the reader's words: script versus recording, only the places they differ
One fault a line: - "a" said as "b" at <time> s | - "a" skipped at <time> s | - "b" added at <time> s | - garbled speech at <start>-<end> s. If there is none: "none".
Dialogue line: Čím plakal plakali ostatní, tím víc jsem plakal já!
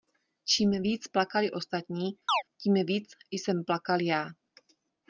- "plakal" said as "víc" at 0.8 s